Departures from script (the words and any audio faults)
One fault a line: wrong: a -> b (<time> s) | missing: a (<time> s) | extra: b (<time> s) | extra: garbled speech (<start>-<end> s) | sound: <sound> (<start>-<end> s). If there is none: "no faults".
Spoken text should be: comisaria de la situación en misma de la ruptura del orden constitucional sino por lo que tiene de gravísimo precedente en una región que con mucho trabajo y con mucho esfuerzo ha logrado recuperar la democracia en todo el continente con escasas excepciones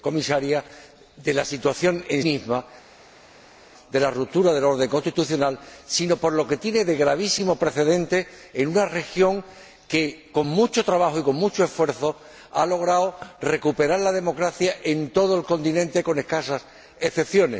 no faults